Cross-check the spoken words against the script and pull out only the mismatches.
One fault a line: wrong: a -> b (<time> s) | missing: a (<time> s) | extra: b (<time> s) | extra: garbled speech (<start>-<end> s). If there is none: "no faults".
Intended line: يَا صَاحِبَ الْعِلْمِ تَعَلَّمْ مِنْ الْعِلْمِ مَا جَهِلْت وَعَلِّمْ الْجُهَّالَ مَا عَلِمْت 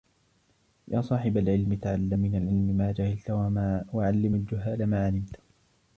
no faults